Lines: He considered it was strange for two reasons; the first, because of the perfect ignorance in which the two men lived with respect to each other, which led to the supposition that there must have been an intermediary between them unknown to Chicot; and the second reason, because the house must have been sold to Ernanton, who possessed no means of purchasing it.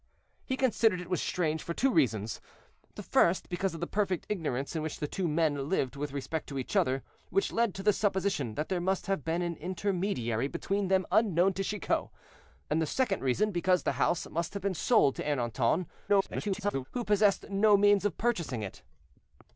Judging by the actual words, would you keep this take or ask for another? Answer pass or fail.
fail